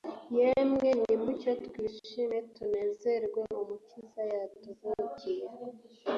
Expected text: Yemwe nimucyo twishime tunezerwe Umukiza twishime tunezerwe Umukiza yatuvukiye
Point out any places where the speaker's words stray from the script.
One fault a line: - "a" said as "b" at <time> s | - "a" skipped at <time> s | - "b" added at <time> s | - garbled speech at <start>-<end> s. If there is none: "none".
- "twishime tunezerwe Umukiza" skipped at 4.2 s